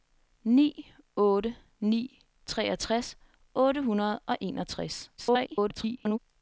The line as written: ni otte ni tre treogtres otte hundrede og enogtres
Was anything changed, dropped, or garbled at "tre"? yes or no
yes